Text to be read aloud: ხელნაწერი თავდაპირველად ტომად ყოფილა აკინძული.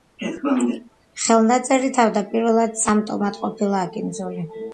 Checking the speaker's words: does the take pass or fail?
fail